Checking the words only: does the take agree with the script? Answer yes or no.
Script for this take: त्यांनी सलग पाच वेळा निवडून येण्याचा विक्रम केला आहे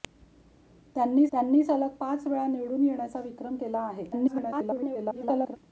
no